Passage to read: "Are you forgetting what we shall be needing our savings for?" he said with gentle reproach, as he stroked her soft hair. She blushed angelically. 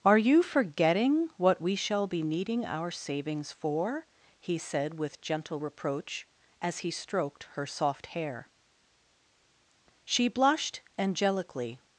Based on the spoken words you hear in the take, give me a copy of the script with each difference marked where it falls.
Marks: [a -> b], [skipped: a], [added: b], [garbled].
"Are you forgetting what we shall be needing our savings for?" he said with gentle reproach, as he stroked her soft hair. She blushed angelically.